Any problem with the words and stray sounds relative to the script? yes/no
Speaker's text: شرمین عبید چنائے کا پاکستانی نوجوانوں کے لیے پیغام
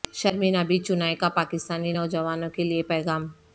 no